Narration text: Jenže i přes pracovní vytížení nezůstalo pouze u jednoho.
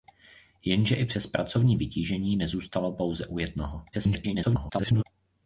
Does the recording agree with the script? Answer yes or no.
no